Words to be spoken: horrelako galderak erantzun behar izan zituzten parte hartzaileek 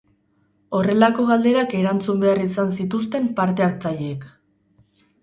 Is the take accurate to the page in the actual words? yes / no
yes